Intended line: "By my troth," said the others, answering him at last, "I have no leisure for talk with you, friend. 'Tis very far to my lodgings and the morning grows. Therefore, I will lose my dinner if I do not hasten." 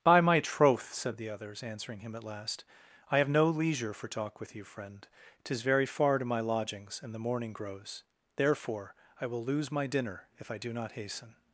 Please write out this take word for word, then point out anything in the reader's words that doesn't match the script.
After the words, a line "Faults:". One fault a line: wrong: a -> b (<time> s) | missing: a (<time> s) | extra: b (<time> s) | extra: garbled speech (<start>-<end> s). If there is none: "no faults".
"By my troth," said the others, answering him at last, "I have no leisure for talk with you, friend. 'Tis very far to my lodgings and the morning grows. Therefore, I will lose my dinner if I do not hasten."
Faults:
no faults